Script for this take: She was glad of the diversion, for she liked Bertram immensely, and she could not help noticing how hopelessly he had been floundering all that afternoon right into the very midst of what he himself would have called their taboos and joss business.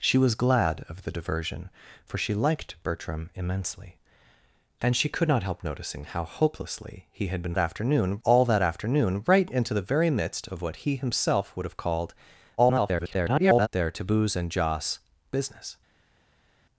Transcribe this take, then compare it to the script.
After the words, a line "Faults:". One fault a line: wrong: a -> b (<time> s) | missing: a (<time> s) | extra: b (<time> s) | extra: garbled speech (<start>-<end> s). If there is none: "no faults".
She was glad of the diversion, for she liked Bertram immensely, and she could not help noticing how hopelessly he had been afternoon all that afternoon right into the very midst of what he himself would have called [garbled] their taboos and joss business.
Faults:
wrong: floundering -> afternoon (7.6 s)
extra: garbled speech (12.6-13.7 s)